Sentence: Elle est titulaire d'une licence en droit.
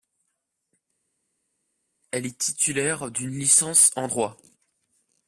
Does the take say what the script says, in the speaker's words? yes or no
yes